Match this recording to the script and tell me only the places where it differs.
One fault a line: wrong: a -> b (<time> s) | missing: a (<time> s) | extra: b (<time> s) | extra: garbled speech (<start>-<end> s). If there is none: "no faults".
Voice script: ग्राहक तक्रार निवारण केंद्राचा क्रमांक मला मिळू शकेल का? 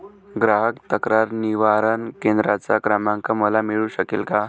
no faults